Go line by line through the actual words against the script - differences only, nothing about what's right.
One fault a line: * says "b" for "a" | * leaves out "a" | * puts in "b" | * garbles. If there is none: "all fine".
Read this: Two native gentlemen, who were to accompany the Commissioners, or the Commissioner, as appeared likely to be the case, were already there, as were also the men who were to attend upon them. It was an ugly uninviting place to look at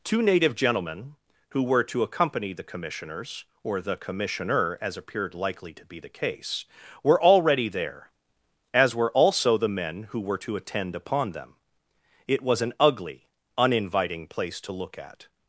all fine